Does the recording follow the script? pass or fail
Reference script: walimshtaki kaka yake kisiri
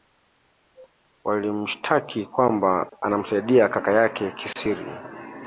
fail